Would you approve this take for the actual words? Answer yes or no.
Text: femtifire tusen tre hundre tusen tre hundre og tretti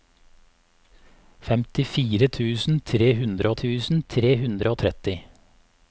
yes